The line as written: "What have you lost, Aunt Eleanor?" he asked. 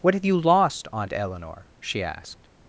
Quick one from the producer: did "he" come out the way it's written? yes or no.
no